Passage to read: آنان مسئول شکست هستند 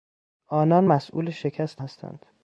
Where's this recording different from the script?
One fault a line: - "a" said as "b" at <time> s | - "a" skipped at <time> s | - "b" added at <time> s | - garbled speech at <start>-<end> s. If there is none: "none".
none